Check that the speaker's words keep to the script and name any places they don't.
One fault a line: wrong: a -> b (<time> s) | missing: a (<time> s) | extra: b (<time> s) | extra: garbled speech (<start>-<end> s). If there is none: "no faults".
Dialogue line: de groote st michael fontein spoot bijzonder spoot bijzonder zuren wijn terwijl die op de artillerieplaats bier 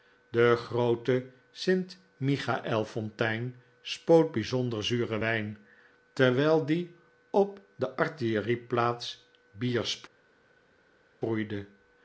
missing: spoot bijzonder (4.8 s)